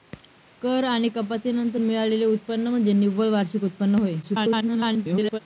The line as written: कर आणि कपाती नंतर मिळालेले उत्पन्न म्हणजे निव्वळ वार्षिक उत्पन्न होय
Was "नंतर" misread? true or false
false